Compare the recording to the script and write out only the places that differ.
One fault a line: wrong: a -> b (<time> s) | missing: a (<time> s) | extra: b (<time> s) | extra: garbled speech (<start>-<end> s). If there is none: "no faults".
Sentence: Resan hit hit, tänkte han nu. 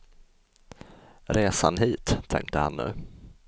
missing: hit (2.2 s)